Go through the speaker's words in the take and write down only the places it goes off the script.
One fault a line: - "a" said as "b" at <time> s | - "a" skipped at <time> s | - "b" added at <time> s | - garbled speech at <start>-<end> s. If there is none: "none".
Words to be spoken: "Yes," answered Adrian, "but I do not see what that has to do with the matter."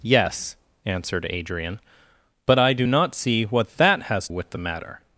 - "to do" skipped at 4.3 s